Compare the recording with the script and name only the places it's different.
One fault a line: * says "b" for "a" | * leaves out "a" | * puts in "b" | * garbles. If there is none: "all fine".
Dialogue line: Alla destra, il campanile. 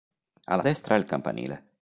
all fine